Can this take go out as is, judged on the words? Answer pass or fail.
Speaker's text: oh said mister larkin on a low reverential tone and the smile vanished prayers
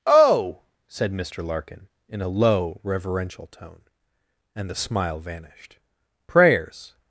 fail